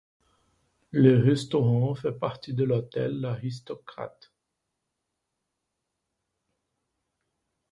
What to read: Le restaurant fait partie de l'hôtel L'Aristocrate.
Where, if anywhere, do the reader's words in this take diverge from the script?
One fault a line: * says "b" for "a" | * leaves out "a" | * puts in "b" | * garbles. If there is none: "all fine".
all fine